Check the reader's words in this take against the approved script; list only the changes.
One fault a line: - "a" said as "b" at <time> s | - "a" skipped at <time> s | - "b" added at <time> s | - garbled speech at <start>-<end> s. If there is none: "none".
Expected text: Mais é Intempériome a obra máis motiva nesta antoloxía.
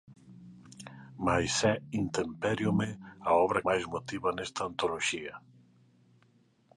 none